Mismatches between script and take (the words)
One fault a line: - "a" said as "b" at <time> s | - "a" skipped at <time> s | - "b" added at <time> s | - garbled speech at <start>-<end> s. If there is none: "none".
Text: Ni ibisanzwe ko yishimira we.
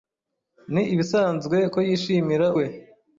none